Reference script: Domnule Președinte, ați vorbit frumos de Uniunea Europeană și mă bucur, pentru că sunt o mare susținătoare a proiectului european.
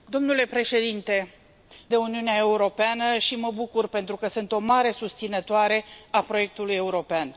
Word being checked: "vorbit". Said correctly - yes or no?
no